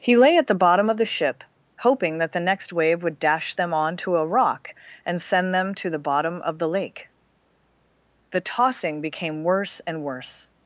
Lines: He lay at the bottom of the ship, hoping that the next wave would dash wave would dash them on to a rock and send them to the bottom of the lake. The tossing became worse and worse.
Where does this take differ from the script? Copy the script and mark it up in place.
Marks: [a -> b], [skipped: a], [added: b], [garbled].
He lay at the bottom of the ship, hoping that the next wave would dash [skipped: wave would dash] them on to a rock and send them to the bottom of the lake. The tossing became worse and worse.